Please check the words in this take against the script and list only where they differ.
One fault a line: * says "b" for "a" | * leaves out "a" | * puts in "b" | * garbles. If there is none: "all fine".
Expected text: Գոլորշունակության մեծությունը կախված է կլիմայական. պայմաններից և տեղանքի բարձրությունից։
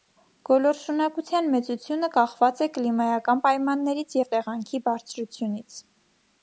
all fine